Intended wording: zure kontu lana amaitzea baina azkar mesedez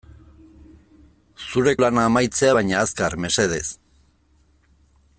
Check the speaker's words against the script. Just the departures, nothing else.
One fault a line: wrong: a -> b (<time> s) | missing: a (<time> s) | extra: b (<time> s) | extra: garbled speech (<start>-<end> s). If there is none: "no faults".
missing: kontu (1.8 s)